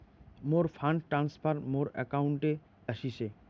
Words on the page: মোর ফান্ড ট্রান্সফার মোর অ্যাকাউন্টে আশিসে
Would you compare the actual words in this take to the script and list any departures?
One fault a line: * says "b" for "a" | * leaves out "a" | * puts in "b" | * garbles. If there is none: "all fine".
all fine